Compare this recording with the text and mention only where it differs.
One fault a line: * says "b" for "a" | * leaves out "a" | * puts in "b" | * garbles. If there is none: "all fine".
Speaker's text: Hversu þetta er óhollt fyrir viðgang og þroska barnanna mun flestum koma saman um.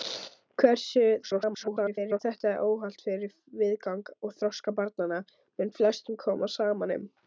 * garbles